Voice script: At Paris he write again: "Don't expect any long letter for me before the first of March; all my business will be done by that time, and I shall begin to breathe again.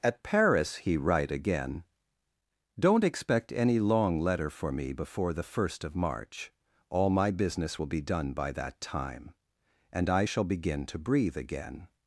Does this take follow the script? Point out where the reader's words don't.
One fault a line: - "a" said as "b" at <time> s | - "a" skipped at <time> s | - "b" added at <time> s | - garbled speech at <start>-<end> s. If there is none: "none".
none